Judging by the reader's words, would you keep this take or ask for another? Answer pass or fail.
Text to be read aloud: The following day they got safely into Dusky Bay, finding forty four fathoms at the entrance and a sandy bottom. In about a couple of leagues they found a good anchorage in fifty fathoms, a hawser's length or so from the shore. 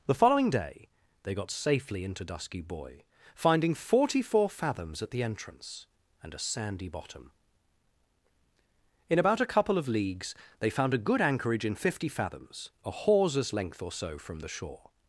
fail